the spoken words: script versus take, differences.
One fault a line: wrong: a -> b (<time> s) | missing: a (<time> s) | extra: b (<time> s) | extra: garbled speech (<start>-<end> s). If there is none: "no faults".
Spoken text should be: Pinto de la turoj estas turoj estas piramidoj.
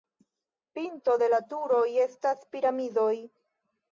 missing: turoj estas (2.5 s)